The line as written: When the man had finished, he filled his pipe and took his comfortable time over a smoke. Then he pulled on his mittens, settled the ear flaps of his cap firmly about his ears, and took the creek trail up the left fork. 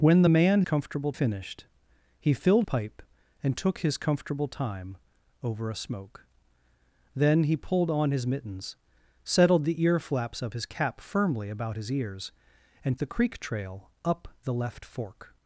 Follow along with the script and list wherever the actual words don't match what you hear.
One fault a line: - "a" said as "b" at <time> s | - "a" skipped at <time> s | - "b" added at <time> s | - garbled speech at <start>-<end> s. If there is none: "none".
- "had" said as "comfortable" at 0.6 s
- "his" skipped at 2.6 s
- "took" skipped at 13.0 s